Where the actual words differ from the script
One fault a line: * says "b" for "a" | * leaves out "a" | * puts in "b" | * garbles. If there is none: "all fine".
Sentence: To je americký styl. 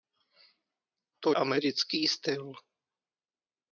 * leaves out "je"